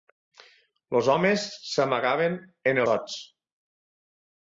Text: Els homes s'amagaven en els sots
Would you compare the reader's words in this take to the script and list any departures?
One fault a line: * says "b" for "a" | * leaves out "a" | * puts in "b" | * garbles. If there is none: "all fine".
* leaves out "els"